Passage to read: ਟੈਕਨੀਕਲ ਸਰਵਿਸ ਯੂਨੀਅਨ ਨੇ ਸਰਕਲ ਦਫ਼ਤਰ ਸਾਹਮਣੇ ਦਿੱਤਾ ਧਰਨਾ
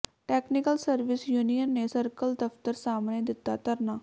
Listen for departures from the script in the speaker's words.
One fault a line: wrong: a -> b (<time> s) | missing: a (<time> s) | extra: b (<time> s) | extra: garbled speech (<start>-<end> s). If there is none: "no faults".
no faults